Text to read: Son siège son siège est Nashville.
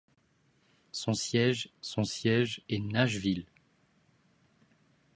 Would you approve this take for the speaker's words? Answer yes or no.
yes